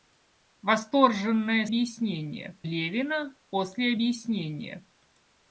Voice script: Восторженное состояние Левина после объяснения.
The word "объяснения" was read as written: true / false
true